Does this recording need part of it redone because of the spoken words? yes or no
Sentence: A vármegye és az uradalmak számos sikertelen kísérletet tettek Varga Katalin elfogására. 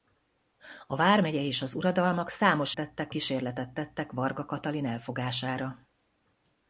yes